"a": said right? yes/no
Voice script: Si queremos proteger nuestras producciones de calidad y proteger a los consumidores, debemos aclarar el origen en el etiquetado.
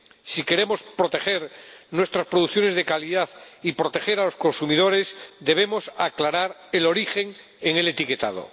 yes